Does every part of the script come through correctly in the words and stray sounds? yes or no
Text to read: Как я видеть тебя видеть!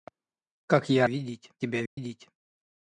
no